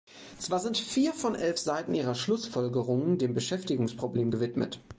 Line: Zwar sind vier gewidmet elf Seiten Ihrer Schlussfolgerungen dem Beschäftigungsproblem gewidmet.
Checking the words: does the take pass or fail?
fail